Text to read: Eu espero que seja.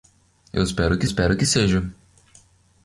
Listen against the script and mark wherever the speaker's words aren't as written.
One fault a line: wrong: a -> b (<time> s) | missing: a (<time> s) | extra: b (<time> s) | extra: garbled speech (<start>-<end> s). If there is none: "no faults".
extra: espero que (1.0 s)